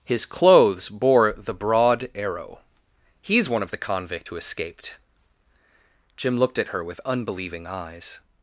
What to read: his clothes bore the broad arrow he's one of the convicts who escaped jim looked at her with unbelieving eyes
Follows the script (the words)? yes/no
no